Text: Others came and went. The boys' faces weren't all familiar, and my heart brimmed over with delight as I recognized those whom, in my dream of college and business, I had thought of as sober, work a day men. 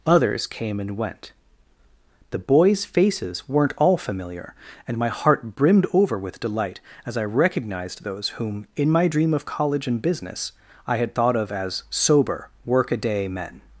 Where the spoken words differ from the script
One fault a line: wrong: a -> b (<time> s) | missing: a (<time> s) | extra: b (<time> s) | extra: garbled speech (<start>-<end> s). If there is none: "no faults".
no faults